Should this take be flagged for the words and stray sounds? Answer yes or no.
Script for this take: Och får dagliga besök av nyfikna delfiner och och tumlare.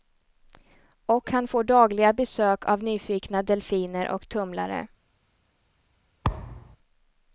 yes